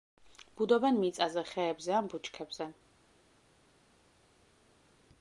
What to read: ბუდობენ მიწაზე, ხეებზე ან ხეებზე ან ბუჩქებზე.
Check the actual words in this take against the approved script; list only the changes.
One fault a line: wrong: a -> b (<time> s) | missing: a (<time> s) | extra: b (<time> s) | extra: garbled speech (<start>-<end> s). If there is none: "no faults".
missing: ხეებზე ან (2.1 s)